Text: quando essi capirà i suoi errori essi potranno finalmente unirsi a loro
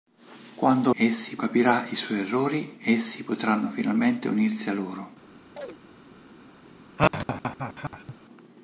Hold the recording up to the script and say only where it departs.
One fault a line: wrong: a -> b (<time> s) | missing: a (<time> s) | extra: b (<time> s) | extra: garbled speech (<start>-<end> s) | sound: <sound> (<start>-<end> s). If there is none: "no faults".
sound: chirp (5.6-5.8 s)
sound: laugh (7.0-8.1 s)